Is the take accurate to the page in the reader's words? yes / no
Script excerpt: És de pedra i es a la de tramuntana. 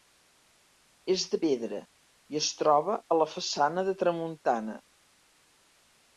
no